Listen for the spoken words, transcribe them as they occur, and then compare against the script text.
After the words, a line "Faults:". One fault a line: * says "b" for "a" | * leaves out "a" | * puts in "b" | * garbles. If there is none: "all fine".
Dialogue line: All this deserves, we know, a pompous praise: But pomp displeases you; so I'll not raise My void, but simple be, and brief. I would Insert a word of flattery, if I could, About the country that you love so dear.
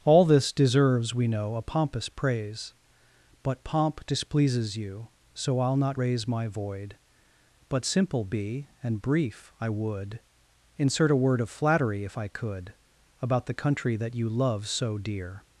All this deserves, we know, a pompous praise: But pomp displeases you; so I'll not raise My void, but simple be, and brief. I would Insert a word of flattery, if I could, About the country that you love so dear.
Faults:
all fine